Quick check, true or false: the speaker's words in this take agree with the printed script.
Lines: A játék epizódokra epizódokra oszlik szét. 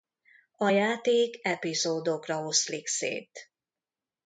false